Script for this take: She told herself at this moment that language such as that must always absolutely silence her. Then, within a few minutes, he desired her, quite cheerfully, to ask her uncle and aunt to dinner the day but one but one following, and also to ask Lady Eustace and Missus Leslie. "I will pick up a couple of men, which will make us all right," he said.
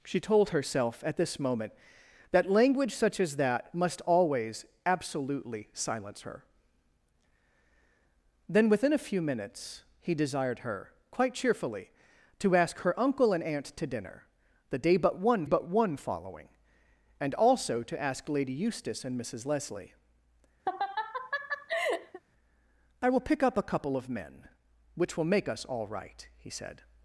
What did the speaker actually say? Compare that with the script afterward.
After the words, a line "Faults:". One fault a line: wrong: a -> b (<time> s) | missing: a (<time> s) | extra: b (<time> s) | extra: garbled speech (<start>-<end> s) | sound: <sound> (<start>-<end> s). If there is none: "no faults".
She told herself at this moment that language such as that must always absolutely silence her. Then, within a few minutes, he desired her, quite cheerfully, to ask her uncle and aunt to dinner the day but one but one following, and also to ask Lady Eustace and Missus Leslie. "I will pick up a couple of men, which will make us all right," he said.
Faults:
sound: laugh (20.7-22.2 s)